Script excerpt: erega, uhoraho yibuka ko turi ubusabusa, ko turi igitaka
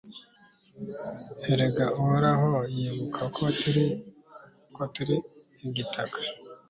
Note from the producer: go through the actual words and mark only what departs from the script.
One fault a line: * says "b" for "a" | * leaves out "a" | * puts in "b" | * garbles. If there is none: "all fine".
* leaves out "ubusabusa"